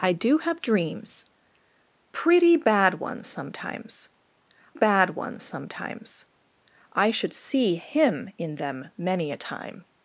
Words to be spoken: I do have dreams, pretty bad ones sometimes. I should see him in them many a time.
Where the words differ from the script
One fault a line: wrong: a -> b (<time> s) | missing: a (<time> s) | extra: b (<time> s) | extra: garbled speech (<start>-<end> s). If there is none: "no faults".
extra: bad ones sometimes (4.7 s)